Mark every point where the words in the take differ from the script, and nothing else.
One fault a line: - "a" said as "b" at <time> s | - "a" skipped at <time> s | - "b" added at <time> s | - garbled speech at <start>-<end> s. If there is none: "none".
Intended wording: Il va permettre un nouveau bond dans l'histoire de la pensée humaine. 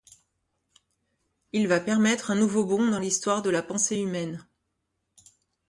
none